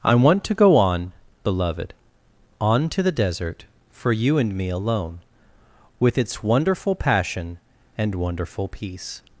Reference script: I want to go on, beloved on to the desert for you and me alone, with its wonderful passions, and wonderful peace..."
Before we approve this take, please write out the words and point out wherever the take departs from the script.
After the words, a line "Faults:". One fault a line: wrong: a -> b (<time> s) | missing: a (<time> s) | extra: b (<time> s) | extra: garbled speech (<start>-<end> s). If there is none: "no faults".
I want to go on, beloved on to the desert for you and me alone, with its wonderful passion, and wonderful peace..."
Faults:
wrong: passions -> passion (7.0 s)